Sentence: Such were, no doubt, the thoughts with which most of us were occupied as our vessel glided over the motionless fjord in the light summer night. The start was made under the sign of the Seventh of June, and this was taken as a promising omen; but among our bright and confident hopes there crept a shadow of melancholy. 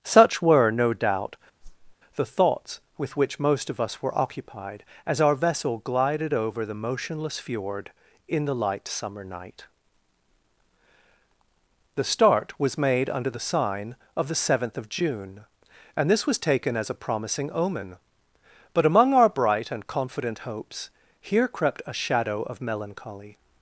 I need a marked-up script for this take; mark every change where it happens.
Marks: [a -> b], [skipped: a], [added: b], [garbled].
Such were, no doubt, the thoughts with which most of us were occupied as our vessel glided over the motionless fjord in the light summer night. The start was made under the sign of the Seventh of June, and this was taken as a promising omen; but among our bright and confident hopes [there -> here] crept a shadow of melancholy.